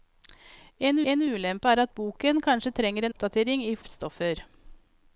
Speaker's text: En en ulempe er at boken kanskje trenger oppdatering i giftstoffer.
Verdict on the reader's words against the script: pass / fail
pass